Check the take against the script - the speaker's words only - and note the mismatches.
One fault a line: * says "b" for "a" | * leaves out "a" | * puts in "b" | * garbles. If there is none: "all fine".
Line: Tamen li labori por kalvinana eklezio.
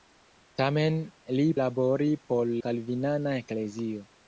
all fine